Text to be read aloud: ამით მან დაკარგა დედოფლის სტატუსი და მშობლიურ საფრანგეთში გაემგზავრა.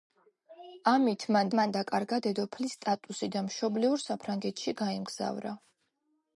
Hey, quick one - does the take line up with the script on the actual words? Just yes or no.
no